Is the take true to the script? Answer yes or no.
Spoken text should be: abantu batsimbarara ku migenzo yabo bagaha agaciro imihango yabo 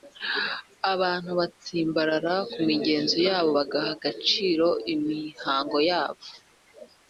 yes